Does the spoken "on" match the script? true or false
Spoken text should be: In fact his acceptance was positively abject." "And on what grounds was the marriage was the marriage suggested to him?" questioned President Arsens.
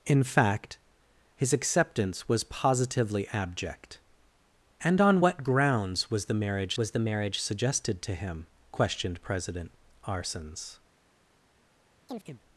true